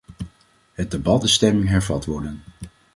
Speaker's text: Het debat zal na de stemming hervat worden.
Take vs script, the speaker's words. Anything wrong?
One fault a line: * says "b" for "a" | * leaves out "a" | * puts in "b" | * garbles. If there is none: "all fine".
* leaves out "zal na"